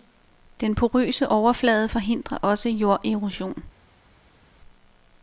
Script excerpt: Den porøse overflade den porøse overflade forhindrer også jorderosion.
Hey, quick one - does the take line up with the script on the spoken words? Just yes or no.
no